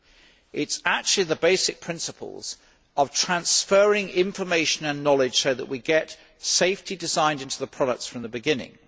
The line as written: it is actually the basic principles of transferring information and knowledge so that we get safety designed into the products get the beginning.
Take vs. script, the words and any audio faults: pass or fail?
fail